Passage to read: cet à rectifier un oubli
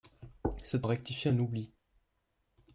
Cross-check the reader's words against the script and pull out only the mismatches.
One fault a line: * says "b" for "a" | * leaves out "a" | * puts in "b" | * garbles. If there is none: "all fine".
all fine